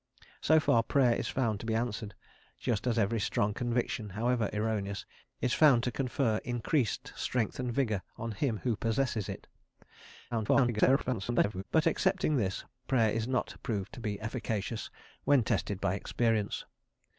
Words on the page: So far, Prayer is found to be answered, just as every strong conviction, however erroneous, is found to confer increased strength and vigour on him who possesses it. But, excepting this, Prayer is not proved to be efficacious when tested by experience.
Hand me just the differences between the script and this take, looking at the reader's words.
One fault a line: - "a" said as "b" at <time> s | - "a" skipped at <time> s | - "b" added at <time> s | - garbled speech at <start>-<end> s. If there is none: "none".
- garbled speech at 10.3-11.6 s